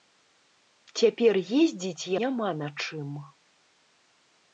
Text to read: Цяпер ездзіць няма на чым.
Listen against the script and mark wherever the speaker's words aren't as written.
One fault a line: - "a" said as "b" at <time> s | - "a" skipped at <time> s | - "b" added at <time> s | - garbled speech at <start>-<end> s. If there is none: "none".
none